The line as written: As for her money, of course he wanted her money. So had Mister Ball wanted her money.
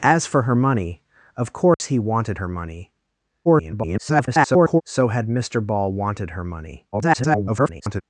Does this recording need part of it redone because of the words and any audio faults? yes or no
yes